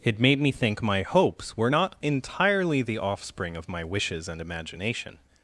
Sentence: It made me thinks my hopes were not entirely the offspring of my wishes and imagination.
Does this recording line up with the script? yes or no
no